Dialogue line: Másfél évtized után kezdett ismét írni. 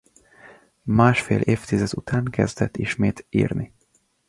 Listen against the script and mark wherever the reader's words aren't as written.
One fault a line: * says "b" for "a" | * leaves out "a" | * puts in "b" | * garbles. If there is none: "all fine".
all fine